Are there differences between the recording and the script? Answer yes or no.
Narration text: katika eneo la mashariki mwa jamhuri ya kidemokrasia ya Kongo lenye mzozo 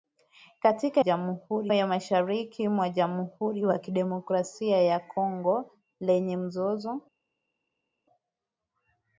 yes